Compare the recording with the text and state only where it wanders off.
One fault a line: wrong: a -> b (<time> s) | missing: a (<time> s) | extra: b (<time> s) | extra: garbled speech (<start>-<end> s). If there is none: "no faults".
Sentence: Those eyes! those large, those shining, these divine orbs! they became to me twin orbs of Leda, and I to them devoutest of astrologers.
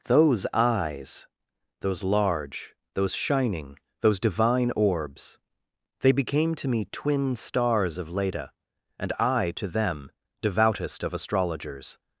wrong: these -> those (4.0 s)
wrong: orbs -> stars (7.3 s)